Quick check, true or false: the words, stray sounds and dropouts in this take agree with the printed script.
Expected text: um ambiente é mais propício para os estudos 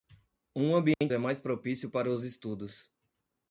false